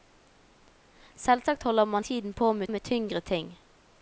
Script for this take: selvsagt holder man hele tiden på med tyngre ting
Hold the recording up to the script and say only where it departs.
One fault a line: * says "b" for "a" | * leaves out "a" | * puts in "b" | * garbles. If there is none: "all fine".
* leaves out "hele"
* puts in "med"